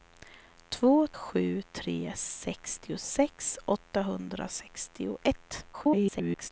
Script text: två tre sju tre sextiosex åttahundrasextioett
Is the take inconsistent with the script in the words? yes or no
yes